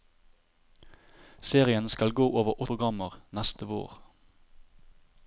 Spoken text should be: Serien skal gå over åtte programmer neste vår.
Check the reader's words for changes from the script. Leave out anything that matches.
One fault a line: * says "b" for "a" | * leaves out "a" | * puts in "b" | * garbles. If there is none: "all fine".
* leaves out "åtte"